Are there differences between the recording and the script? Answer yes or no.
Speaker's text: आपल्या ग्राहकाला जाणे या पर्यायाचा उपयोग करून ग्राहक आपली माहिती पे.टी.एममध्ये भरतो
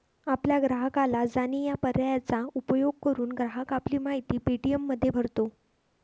no